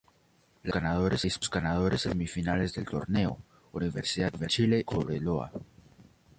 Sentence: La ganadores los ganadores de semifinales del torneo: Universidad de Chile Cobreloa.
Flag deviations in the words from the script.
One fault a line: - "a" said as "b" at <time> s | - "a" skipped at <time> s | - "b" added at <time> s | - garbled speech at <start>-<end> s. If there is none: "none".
none